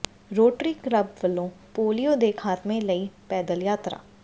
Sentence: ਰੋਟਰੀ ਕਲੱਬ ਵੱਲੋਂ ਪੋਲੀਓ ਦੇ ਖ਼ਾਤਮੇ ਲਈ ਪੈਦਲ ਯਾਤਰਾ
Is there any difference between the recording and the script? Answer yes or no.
no